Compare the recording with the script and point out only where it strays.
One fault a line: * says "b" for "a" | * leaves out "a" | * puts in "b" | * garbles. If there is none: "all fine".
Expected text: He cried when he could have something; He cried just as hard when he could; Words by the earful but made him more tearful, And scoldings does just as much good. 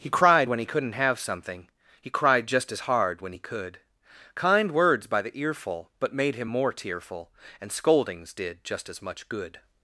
* says "couldn't" for "could"
* puts in "Kind"
* says "did" for "does"